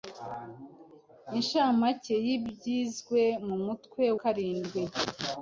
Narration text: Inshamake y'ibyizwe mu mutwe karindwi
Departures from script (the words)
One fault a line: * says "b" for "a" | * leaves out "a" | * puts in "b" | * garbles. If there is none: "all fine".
all fine